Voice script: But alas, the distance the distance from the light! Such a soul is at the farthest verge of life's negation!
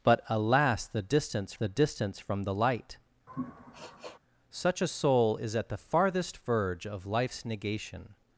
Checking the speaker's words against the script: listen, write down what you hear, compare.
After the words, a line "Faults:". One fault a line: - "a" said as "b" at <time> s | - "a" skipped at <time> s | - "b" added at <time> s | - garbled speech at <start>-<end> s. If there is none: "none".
But alas, the distance the distance from the light! Such a soul is at the farthest verge of life's negation!
Faults:
none